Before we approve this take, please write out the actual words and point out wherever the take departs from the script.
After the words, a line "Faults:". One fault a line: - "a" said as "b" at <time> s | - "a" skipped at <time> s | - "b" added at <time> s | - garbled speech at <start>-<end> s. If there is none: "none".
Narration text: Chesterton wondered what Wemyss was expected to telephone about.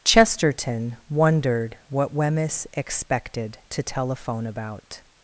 Chesterton wondered what Wemyss expected to telephone about.
Faults:
- "was" skipped at 2.7 s